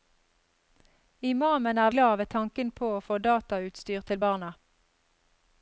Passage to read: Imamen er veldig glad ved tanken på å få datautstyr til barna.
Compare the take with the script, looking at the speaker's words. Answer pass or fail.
fail